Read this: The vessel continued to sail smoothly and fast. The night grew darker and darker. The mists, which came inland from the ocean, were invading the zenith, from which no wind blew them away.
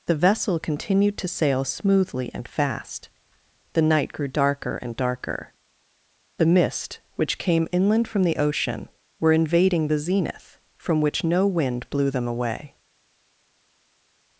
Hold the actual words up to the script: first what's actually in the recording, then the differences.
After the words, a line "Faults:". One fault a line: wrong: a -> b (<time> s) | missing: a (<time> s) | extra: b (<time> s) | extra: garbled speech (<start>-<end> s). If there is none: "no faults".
The vessel continued to sail smoothly and fast. The night grew darker and darker. The mist, which came inland from the ocean, were invading the zenith, from which no wind blew them away.
Faults:
wrong: mists -> mist (6.5 s)